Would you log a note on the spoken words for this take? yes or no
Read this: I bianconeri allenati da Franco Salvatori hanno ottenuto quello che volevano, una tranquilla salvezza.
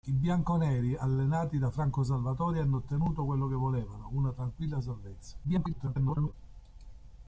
yes